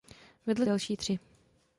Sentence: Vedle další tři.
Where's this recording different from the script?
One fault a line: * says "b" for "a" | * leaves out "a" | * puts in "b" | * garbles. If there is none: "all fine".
all fine